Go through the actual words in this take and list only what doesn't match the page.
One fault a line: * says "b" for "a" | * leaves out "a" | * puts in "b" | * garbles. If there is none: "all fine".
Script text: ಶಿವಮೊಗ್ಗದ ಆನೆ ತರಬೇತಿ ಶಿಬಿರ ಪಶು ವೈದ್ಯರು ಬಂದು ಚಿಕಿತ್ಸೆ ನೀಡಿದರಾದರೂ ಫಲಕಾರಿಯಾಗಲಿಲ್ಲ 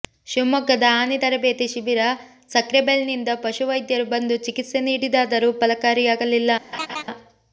* puts in "ಸಕ್ರೆಬೈಲ್ನಿಂದ"